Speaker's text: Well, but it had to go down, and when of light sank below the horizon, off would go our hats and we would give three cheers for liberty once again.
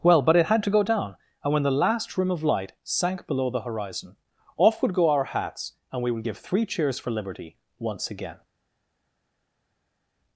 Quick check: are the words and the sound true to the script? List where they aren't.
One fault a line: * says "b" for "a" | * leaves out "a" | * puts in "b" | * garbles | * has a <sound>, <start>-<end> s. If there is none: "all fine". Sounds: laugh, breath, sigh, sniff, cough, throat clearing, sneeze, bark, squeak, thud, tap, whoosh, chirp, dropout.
* puts in "the last rim"